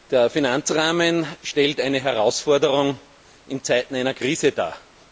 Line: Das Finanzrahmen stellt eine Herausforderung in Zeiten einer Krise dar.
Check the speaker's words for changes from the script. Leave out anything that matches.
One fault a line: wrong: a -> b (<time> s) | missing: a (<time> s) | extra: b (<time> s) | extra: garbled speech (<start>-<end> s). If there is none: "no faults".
wrong: Das -> Der (0.1 s)